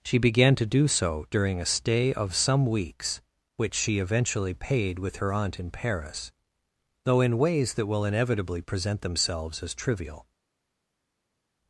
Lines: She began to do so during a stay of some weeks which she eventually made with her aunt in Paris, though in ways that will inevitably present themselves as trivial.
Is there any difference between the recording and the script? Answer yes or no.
yes